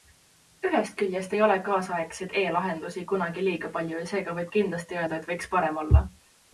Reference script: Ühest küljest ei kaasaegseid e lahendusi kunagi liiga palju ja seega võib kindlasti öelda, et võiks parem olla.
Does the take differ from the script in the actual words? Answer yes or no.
yes